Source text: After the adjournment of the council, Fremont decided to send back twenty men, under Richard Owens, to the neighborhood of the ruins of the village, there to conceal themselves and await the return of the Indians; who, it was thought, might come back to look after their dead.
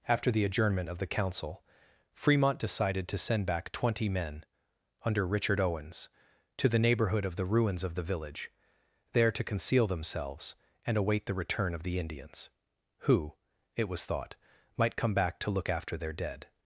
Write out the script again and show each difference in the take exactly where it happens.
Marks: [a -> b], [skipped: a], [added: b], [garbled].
After the adjournment of the council, Fremont decided to send back twenty men, under Richard Owens, to the neighborhood of the ruins of the village, there to conceal themselves and await the return of the Indians; who, it was thought, might come back to look after their dead.